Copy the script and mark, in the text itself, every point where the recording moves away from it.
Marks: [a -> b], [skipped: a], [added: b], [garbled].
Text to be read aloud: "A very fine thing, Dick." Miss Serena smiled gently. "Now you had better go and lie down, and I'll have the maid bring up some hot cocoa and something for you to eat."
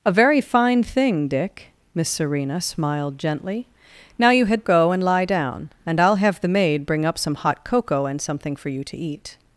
"A very fine thing, Dick." Miss Serena smiled gently. "Now you had [skipped: better] go and lie down, and I'll have the maid bring up some hot cocoa and something for you to eat."